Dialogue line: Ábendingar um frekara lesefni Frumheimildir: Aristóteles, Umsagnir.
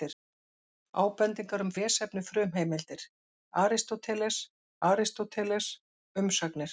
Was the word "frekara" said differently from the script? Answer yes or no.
yes